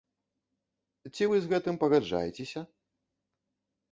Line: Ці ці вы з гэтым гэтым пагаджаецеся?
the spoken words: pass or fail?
fail